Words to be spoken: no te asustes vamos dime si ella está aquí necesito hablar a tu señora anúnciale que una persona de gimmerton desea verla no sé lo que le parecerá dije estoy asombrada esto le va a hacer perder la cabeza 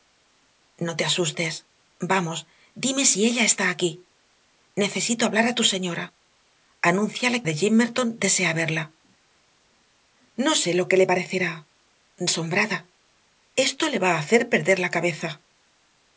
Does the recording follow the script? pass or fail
fail